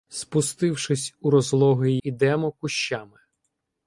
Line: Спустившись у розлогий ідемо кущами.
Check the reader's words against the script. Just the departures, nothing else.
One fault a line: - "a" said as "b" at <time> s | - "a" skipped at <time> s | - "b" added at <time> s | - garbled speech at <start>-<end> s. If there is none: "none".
none